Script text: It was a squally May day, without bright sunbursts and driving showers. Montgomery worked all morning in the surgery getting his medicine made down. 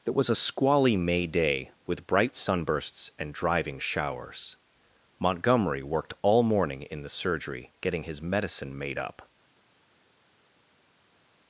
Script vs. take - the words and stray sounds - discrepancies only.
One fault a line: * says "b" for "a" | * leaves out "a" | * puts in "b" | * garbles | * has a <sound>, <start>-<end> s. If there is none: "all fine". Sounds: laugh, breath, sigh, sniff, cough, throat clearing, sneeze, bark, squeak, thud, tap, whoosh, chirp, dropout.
* says "with" for "without"
* says "up" for "down"